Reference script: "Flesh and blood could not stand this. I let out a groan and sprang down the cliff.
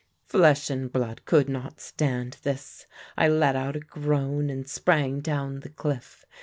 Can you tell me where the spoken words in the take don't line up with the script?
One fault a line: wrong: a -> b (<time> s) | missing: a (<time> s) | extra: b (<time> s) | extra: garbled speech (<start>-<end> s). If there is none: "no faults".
no faults